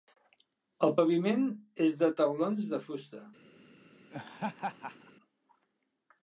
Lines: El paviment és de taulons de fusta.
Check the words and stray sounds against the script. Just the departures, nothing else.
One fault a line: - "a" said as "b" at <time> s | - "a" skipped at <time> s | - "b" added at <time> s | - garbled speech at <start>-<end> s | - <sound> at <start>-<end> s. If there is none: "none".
- laugh at 4.1-5.1 s